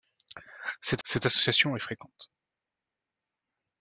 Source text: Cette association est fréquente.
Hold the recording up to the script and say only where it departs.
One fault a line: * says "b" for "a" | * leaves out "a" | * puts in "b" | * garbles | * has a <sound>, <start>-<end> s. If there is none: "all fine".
* puts in "cette"